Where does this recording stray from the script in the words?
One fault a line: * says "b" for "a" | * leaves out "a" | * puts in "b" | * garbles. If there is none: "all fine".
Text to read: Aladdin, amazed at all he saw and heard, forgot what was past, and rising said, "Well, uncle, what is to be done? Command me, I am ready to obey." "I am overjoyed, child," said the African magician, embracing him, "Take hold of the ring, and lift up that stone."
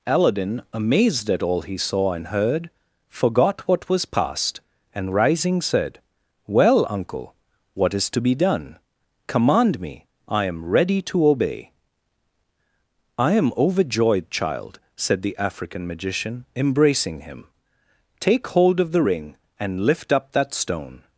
all fine